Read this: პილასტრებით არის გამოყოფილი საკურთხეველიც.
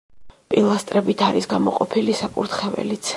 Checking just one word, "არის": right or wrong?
right